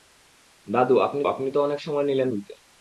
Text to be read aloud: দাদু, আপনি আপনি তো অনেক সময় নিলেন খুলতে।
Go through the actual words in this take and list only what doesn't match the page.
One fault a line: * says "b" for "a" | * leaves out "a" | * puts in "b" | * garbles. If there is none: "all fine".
all fine